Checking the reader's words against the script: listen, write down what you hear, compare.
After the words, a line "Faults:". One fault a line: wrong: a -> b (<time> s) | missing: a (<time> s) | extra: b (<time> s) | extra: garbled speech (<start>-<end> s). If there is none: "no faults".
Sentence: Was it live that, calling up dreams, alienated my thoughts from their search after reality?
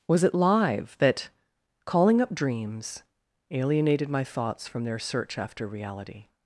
Was it live that, calling up dreams, alienated my thoughts from their search after reality?
Faults:
no faults